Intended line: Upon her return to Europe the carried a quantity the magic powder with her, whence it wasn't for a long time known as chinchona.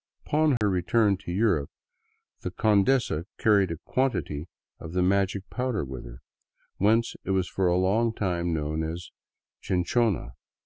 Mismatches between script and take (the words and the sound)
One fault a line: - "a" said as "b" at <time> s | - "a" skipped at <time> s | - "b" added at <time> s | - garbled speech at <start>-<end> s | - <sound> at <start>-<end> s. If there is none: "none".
- dropout at 0.6-0.6 s
- "condesa" added at 2.5 s
- "of" added at 4.8 s
- "wasn't" said as "was" at 7.3 s